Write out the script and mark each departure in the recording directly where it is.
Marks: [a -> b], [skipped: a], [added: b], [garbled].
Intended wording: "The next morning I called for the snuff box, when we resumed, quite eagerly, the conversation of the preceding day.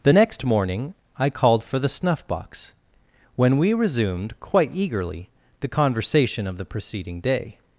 "The next morning I called for the snuff box, when we resumed, quite eagerly, the conversation of the preceding day.